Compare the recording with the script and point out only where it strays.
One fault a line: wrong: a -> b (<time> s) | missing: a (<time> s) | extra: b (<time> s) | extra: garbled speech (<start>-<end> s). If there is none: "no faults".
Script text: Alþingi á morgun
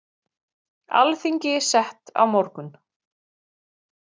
extra: sett (1.7 s)